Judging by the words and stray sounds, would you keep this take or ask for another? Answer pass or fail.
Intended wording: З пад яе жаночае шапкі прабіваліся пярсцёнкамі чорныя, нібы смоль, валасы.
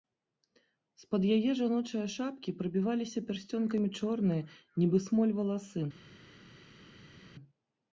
pass